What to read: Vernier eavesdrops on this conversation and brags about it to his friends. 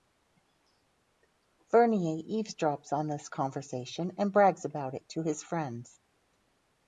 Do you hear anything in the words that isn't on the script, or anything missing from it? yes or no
no